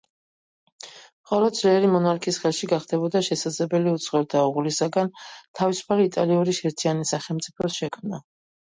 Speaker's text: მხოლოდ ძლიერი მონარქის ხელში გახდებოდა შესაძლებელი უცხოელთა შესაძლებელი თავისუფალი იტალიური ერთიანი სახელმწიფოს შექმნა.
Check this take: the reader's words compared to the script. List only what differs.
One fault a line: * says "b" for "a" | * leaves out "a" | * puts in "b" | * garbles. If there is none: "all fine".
* says "უღლისაგან" for "შესაძლებელი"